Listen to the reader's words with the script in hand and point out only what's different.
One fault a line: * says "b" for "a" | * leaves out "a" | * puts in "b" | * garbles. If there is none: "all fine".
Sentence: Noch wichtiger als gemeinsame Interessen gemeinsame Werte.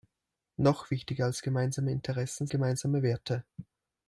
all fine